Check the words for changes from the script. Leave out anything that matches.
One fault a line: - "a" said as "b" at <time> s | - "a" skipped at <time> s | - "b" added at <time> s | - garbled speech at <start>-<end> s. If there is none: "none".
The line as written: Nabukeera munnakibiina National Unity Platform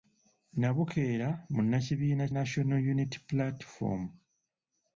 none